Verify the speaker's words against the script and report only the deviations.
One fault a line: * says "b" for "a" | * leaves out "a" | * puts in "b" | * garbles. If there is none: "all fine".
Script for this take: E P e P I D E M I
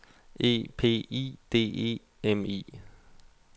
* leaves out "e P"